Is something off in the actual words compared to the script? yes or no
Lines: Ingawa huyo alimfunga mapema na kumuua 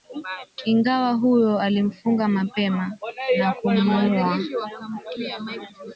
no